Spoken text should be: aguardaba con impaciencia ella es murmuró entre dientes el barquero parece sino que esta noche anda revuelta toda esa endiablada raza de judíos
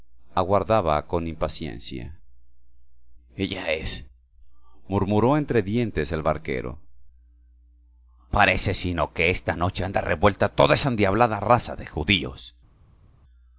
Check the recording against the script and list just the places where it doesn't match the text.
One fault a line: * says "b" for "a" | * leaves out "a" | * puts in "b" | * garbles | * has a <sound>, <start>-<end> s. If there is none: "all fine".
all fine